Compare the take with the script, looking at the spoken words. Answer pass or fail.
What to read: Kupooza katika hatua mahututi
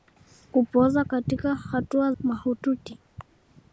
pass